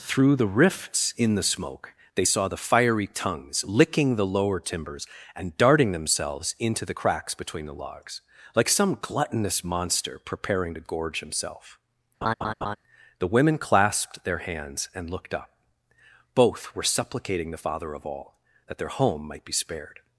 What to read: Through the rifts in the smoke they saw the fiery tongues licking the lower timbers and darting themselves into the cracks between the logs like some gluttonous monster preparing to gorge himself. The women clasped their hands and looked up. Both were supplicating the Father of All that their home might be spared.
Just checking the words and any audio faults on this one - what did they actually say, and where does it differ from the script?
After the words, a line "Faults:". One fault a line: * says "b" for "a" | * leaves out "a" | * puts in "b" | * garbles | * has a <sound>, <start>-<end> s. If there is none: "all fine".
Through the rifts in the smoke they saw the fiery tongues licking the lower timbers and darting themselves into the cracks between the logs like some gluttonous monster preparing to gorge himself. The women clasped their hands and looked up. Both were supplicating the Father of All that their home might be spared.
Faults:
* has a laugh, 12.2-12.8 s